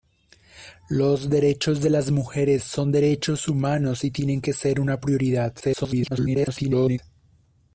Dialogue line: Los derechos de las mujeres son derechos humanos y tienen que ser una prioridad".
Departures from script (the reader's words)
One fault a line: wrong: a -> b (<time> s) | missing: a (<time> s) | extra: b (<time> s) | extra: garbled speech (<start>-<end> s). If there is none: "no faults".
extra: garbled speech (5.6-7.0 s)